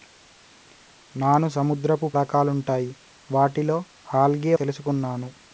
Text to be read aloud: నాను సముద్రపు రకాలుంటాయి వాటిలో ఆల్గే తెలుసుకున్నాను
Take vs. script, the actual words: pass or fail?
pass